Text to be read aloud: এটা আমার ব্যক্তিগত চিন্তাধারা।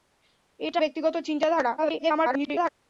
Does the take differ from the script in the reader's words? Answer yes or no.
yes